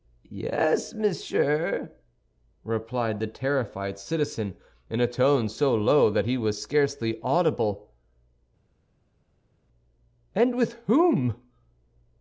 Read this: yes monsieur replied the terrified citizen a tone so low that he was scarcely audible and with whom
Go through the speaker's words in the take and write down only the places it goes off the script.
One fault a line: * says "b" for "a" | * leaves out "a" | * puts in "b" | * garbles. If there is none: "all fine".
* puts in "in"